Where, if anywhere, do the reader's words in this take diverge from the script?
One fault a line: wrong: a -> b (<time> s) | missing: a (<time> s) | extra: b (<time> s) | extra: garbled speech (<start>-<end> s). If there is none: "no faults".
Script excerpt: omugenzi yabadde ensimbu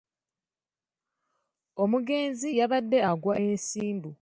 extra: agwa (3.1 s)